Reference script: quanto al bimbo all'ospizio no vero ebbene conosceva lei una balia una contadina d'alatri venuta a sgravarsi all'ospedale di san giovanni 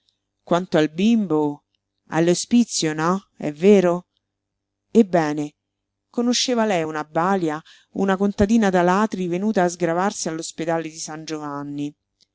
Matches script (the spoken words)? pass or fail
fail